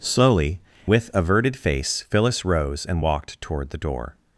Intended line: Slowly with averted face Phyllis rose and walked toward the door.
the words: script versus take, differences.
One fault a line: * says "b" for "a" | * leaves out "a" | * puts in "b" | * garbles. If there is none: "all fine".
all fine